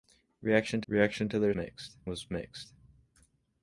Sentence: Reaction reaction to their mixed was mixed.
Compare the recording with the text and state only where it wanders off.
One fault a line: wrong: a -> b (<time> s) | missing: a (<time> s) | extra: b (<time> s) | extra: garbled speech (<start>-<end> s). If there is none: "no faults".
no faults